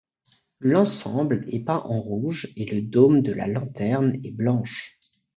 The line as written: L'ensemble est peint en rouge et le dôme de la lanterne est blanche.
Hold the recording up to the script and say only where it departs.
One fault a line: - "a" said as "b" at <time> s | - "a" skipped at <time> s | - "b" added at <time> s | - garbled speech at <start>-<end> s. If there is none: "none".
none